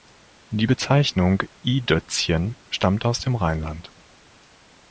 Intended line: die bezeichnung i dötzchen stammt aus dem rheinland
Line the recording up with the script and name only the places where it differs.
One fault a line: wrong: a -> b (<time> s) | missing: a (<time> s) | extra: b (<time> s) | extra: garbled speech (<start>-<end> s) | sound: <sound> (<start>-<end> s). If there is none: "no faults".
no faults